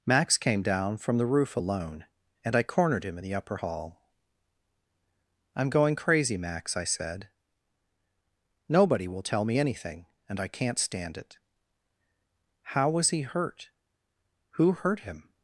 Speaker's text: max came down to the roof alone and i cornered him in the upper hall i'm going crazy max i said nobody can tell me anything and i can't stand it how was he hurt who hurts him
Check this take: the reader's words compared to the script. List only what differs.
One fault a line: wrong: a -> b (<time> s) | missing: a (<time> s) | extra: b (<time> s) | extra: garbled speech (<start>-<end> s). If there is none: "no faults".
wrong: to -> from (1.0 s)
wrong: can -> will (9.1 s)
wrong: hurts -> hurt (14.7 s)